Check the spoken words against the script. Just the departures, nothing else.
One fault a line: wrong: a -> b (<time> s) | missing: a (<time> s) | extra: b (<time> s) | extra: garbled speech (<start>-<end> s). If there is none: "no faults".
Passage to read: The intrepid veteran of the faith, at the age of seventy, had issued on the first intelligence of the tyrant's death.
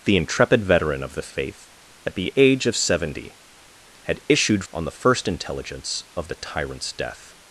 no faults